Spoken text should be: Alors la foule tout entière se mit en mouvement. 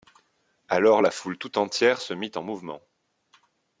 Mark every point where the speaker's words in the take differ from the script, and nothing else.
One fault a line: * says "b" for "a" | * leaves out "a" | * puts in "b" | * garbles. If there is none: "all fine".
all fine